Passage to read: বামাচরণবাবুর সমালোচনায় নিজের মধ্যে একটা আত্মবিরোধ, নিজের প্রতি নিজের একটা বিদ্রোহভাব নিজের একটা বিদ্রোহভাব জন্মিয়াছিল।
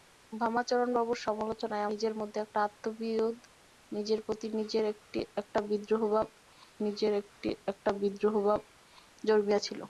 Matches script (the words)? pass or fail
pass